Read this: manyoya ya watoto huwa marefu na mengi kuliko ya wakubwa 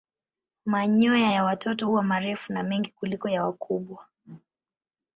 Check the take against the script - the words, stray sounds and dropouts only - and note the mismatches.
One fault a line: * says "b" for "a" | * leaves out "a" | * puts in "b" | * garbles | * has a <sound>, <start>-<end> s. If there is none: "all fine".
all fine